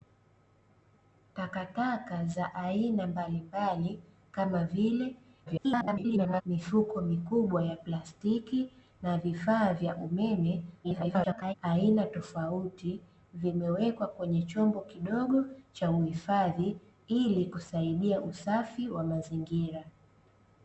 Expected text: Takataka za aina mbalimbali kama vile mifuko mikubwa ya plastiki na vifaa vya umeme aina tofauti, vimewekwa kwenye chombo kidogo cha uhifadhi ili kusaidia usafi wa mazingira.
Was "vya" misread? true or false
false